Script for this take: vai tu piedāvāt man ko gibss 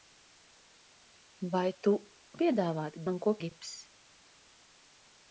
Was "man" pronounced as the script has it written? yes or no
yes